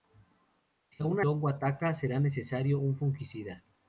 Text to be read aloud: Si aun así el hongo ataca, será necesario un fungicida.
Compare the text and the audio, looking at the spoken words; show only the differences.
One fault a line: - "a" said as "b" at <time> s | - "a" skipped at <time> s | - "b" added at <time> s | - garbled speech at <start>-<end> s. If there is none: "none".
- "así el" skipped at 1.2 s